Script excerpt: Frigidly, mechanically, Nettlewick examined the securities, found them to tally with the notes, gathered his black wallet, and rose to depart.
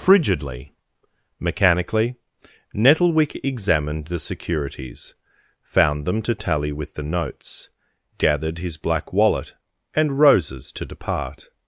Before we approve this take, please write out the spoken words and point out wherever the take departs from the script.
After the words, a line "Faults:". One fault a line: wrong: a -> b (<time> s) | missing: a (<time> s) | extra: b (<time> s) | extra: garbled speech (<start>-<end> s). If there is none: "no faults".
Frigidly, mechanically, Nettlewick examined the securities, found them to tally with the notes, gathered his black wallet, and roses to depart.
Faults:
wrong: rose -> roses (10.2 s)